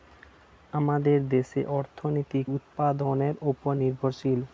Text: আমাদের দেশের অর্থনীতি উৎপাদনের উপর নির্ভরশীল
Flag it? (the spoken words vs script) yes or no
no